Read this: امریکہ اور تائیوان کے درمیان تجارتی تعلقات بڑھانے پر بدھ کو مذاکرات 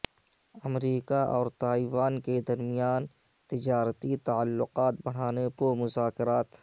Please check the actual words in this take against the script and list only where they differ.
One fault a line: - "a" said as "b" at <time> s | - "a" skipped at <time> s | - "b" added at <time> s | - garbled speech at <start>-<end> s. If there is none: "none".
- "پر بدھ" skipped at 5.5 s